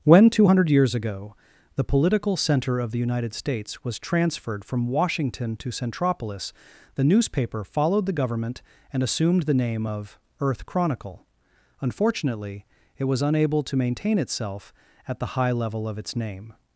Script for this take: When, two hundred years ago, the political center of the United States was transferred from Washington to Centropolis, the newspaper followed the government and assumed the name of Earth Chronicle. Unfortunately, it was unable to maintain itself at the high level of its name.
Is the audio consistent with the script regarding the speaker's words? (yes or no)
yes